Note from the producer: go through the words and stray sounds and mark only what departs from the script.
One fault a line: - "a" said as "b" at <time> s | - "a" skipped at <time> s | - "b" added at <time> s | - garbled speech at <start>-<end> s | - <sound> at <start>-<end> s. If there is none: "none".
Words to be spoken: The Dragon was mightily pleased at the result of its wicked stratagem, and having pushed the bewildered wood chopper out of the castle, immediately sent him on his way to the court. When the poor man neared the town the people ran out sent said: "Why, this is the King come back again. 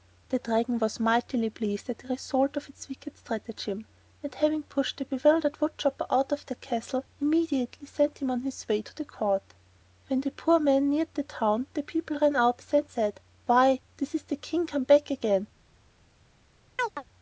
- chirp at 16.8-17.0 s